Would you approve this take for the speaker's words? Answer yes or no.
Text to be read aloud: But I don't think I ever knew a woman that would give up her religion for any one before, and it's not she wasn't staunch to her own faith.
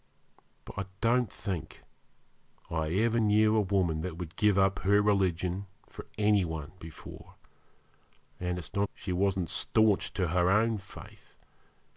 yes